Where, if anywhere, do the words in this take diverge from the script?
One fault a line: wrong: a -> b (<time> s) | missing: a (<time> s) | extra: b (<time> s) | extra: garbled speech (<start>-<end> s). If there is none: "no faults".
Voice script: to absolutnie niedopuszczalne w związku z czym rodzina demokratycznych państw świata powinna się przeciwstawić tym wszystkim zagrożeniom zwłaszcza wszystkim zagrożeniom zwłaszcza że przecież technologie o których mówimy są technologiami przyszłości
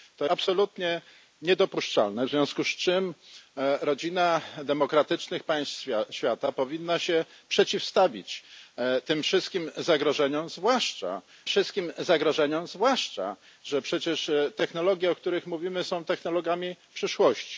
no faults